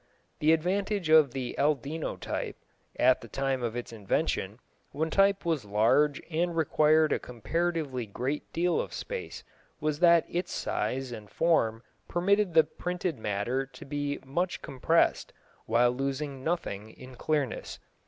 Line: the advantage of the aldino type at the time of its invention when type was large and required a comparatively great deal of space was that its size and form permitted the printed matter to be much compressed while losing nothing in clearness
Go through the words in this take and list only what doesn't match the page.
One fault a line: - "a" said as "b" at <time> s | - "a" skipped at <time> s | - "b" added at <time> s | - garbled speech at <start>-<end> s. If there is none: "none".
none